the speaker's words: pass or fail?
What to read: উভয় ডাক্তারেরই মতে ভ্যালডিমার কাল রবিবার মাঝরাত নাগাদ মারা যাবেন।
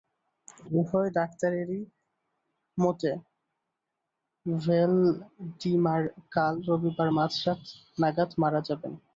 pass